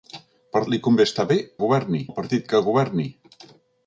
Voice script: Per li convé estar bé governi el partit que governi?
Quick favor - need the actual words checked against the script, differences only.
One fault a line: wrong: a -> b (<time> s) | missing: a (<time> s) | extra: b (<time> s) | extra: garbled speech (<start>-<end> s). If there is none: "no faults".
no faults